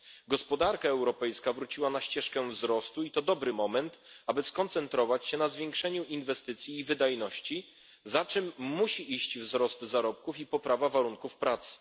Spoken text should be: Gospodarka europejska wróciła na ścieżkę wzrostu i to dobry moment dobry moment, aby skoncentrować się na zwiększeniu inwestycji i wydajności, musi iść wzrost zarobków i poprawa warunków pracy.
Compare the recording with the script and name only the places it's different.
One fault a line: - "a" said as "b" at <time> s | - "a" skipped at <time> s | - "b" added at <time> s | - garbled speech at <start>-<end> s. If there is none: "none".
- "dobry moment" skipped at 4.0 s
- "za czym" added at 8.0 s